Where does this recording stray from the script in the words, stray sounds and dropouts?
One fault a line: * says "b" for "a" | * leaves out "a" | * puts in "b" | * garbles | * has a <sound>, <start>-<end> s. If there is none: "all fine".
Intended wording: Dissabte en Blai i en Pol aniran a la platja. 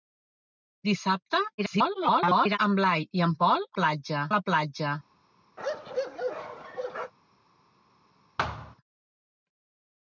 * garbles
* says "platja" for "aniran"
* has a bark, 5.6-7.1 s
* has a thud, 8.4-8.8 s